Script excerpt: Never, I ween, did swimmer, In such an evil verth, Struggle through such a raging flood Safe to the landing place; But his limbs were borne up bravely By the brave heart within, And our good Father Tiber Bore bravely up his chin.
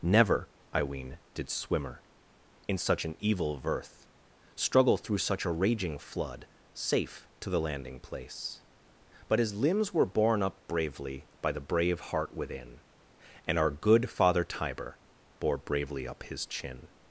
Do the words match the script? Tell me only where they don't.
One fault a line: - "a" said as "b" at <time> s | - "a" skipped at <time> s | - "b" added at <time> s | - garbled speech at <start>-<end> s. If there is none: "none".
none